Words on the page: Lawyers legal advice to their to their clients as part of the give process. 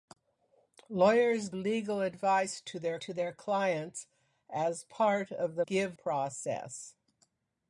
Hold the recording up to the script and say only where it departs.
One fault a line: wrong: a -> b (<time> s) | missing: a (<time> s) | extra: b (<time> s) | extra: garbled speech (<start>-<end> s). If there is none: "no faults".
no faults